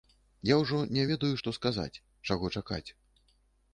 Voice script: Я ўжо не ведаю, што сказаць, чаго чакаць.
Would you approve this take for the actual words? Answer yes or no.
yes